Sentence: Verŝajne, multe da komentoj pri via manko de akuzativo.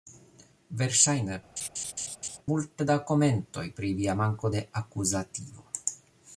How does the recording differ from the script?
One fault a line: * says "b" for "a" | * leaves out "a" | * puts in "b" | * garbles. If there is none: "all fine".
all fine